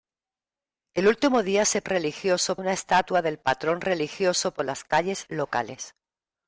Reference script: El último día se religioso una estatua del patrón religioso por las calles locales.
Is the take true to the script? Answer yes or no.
yes